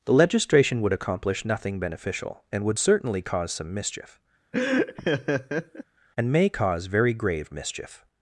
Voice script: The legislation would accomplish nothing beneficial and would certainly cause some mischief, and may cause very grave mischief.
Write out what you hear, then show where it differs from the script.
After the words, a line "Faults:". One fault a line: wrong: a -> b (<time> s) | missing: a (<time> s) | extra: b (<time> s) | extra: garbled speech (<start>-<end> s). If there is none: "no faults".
The legislation would accomplish nothing beneficial and would certainly cause some mischief, and may cause very grave mischief.
Faults:
no faults